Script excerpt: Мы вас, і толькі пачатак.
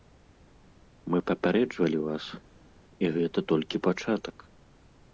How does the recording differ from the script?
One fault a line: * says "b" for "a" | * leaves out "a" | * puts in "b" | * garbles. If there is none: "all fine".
* puts in "папярэджвалі"
* puts in "гэта"